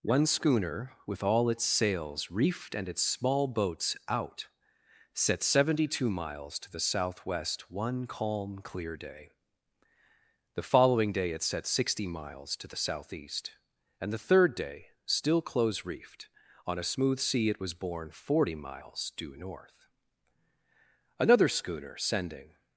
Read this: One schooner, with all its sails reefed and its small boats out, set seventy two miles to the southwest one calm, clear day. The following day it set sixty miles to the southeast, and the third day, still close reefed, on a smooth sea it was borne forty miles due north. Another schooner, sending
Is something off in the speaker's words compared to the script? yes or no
no